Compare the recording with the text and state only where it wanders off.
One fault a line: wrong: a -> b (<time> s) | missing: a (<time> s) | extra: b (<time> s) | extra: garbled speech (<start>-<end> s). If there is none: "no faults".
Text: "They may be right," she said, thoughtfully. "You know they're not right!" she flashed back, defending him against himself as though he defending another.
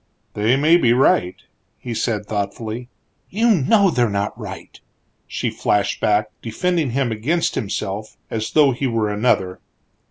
wrong: she -> he (1.8 s)
wrong: defending -> were (8.9 s)